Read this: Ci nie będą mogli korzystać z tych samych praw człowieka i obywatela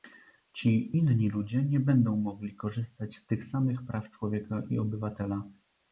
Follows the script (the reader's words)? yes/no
no